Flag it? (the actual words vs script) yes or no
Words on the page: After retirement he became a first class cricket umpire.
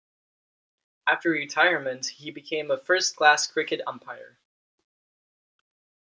no